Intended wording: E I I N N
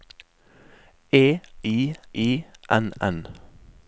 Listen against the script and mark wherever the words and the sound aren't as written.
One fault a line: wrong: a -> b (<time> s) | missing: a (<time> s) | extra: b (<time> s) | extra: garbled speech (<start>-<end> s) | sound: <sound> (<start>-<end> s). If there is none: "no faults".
no faults